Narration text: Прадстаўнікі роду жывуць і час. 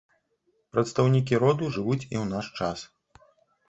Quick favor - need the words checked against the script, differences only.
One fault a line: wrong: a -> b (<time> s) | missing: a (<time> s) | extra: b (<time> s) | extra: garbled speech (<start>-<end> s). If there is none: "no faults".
extra: ў наш (2.2 s)